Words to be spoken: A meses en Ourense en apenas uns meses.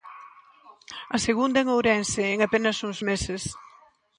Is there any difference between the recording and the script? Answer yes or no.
yes